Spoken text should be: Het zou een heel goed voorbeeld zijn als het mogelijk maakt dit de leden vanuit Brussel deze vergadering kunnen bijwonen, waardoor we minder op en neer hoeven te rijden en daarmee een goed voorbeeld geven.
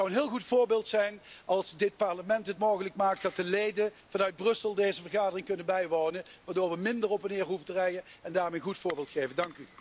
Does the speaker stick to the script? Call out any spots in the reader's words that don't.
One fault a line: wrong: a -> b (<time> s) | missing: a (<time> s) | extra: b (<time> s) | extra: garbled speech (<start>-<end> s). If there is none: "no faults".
extra: dit Parlement (1.7 s)
wrong: dit -> dat (3.2 s)